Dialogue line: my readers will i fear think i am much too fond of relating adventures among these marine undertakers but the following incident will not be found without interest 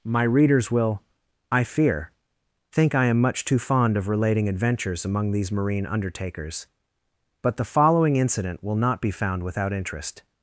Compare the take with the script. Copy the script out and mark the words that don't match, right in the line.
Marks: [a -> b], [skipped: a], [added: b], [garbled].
my readers will i fear think i am much too fond of relating adventures among these marine undertakers but the following incident will not be found without interest